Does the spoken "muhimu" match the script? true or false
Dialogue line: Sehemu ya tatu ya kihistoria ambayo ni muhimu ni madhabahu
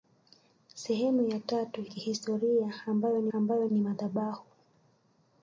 false